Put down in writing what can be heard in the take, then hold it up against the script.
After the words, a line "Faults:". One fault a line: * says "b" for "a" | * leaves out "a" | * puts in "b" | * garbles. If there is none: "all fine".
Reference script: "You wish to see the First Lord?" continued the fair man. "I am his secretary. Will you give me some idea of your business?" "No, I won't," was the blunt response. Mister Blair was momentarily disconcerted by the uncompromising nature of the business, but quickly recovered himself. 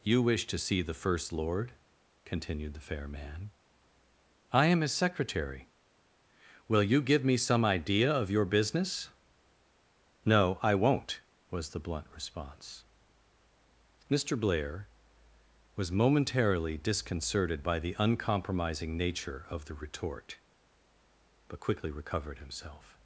"You wish to see the First Lord?" continued the fair man. "I am his secretary. Will you give me some idea of your business?" "No, I won't," was the blunt response. Mister Blair was momentarily disconcerted by the uncompromising nature of the retort, but quickly recovered himself.
Faults:
* says "retort" for "business"